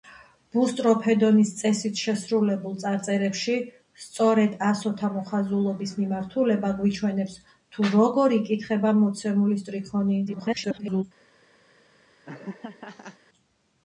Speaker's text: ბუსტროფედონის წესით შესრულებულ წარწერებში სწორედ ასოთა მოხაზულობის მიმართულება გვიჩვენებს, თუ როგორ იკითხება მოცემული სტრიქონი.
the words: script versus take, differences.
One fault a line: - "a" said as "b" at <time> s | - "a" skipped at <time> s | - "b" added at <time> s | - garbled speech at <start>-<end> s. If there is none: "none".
- garbled speech at 10.3-11.0 s